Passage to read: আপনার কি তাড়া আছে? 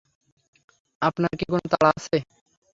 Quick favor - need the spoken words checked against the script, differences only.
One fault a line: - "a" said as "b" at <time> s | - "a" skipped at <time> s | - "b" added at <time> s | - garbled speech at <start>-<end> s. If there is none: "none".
- "কোনো" added at 1.5 s